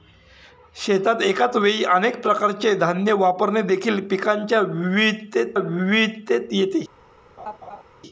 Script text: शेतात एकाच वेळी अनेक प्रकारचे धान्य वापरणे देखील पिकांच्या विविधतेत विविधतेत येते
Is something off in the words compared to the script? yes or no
no